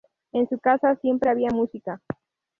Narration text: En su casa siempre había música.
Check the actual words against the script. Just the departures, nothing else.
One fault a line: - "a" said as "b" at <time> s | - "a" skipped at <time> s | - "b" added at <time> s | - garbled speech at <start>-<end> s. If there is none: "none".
none